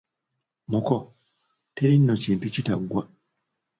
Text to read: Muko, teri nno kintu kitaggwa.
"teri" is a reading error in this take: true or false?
false